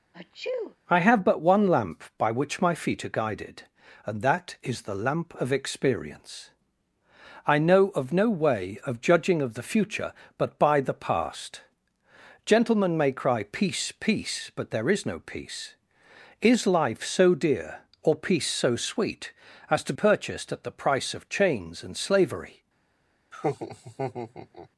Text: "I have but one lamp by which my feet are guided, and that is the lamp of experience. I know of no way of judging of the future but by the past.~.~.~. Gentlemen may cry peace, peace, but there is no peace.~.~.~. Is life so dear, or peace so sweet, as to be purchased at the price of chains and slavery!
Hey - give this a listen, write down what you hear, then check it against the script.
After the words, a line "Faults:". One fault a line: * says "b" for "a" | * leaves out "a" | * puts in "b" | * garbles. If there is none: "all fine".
"I have but one lamp by which my feet are guided, and that is the lamp of experience. I know of no way of judging of the future but by the past.~.~.~. Gentlemen may cry peace, peace, but there is no peace.~.~.~. Is life so dear, or peace so sweet, as to purchased at the price of chains and slavery!
Faults:
* leaves out "be"